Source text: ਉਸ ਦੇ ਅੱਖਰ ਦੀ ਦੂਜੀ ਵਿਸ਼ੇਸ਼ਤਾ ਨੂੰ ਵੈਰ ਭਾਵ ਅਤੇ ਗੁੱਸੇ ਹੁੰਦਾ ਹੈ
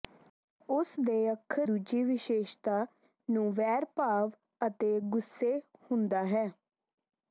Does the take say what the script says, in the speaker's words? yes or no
no